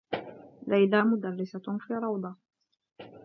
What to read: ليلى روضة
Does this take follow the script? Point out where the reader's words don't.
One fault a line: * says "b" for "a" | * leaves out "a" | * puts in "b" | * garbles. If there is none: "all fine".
* puts in "مدرّسة في"